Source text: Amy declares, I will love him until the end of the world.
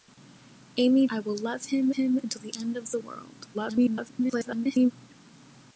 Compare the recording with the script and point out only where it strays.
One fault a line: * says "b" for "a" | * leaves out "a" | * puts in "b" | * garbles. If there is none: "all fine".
* leaves out "declares"
* puts in "him"
* garbles